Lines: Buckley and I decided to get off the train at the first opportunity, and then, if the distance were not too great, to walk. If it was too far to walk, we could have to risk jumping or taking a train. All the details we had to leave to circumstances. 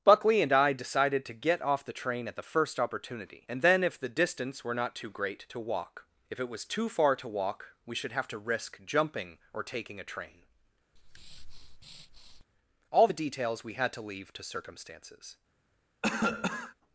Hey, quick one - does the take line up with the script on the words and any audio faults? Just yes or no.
no